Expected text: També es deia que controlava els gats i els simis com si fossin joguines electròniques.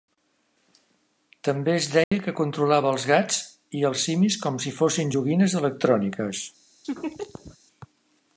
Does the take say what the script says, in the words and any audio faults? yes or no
no